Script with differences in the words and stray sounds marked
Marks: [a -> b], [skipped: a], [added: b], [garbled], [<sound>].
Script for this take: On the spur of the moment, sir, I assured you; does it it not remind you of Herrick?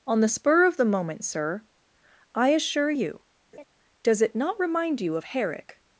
On the spur of the moment, sir, I [assured -> assure] you; [laugh] does it [skipped: it] not remind you of Herrick?